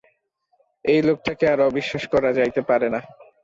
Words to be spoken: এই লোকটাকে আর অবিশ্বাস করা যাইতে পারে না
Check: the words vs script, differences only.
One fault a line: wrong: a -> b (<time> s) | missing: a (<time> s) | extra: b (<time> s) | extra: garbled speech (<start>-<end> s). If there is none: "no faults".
no faults